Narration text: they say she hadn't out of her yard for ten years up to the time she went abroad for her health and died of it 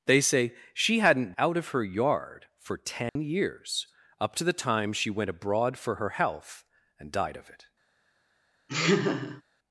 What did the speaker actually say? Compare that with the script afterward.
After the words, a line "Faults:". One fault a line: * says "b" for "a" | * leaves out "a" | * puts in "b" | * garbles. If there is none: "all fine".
they say she hadn't out of her yard for ten years up to the time she went abroad for her health and died of it
Faults:
all fine